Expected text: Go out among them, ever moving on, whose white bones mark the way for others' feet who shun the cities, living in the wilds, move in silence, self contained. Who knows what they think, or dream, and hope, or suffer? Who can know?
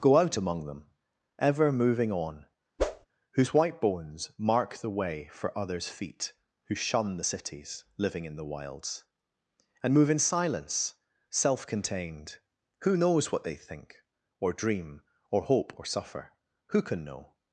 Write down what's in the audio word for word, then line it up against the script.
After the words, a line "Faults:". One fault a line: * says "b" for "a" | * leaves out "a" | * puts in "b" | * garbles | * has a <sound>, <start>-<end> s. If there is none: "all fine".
Go out among them, ever moving on, whose white bones mark the way for others' feet who shun the cities, living in the wilds, and move in silence, self contained. Who knows what they think, or dream, or hope, or suffer? Who can know?
Faults:
* has a whoosh, 2.8-3.1 s
* puts in "and"
* says "or" for "and"